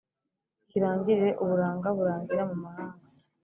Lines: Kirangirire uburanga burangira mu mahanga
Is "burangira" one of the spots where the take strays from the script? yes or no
no